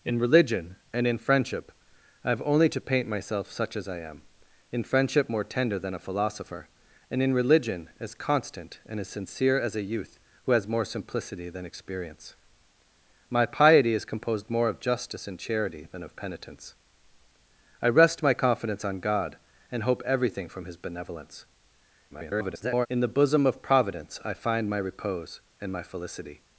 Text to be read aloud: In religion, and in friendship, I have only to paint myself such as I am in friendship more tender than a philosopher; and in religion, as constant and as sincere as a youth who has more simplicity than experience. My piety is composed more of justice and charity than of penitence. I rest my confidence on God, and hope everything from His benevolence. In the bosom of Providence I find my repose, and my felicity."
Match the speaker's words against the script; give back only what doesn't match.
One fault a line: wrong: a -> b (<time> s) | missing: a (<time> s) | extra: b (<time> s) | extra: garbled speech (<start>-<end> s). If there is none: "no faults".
extra: garbled speech (22.1-22.9 s)